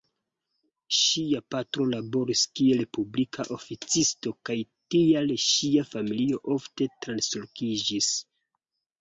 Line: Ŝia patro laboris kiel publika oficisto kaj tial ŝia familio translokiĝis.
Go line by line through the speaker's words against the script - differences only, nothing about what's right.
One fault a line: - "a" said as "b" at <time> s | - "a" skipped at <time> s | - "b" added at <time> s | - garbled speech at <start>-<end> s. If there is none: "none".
- "ofte" added at 6.6 s